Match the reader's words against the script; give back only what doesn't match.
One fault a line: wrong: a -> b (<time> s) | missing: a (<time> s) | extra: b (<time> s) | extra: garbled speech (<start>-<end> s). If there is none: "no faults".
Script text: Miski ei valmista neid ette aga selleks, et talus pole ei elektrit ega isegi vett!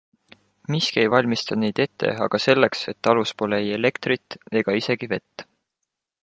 no faults